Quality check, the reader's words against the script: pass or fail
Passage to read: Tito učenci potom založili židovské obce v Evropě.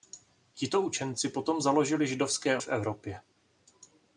fail